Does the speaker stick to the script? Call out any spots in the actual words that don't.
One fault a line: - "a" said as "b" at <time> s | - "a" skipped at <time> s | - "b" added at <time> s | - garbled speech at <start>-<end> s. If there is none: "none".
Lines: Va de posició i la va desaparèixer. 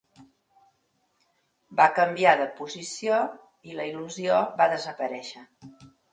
- "canviar" added at 2.0 s
- "il·lusió" added at 3.9 s